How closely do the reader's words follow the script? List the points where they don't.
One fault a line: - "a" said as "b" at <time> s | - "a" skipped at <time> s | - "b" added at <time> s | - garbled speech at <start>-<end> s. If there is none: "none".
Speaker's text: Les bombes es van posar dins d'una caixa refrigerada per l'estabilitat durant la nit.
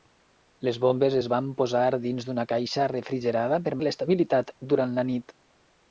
none